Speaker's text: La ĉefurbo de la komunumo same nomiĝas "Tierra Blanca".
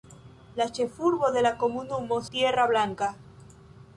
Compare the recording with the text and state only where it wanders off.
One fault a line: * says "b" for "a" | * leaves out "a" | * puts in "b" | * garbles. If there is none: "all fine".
* leaves out "same nomiĝas"